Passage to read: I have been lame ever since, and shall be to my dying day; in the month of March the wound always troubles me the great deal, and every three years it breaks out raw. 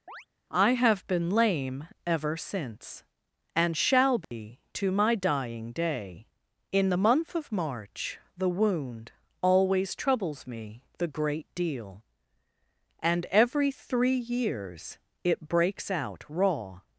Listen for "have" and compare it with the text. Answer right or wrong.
right